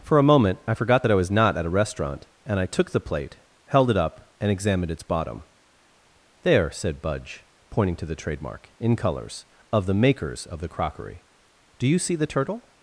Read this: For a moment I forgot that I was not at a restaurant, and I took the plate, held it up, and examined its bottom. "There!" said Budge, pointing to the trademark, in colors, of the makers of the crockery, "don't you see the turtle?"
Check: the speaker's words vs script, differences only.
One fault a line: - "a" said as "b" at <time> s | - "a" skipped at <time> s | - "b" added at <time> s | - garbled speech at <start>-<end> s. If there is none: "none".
- "don't" said as "do" at 11.8 s